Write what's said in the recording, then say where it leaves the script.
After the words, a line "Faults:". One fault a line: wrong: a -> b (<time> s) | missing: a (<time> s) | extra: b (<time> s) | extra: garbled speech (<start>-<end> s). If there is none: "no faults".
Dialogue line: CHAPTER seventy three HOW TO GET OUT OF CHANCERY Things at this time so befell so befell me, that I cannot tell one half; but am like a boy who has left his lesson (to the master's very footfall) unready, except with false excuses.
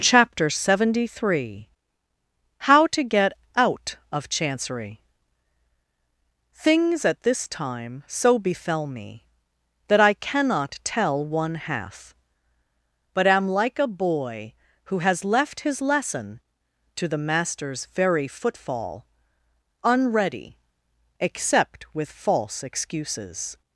CHAPTER seventy three HOW TO GET OUT OF CHANCERY Things at this time so befell me, that I cannot tell one half; but am like a boy who has left his lesson (to the master's very footfall) unready, except with false excuses.
Faults:
missing: so befell (8.9 s)